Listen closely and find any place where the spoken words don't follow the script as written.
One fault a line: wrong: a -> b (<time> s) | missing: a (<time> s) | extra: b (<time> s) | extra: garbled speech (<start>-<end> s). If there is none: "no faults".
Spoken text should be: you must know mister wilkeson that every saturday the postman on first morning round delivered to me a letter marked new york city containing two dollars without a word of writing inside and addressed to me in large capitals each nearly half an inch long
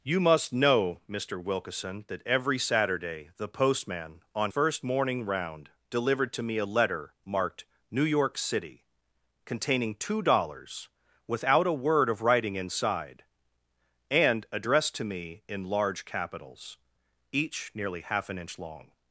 no faults